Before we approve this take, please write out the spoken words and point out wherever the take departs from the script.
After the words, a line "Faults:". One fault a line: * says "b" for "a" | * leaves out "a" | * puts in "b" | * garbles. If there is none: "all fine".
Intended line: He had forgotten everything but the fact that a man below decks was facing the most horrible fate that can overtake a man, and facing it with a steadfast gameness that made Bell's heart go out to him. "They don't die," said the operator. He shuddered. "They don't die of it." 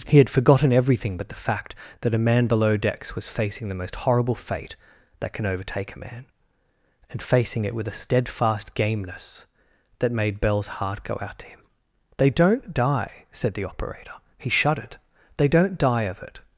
He had forgotten everything but the fact that a man below decks was facing the most horrible fate that can overtake a man, and facing it with a steadfast gameness that made Bell's heart go out to him. "They don't die," said the operator. He shuddered. "They don't die of it."
Faults:
all fine